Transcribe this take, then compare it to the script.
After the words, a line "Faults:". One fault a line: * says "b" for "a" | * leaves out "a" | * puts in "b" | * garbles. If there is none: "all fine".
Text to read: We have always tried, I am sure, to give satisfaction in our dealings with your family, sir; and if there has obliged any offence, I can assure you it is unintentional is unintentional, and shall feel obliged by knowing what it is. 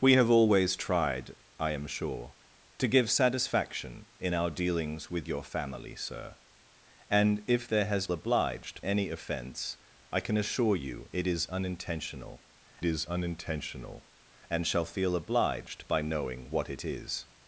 We have always tried, I am sure, to give satisfaction in our dealings with your family, sir; and if there has obliged any offence, I can assure you it is unintentional is unintentional, and shall feel obliged by knowing what it is.
Faults:
all fine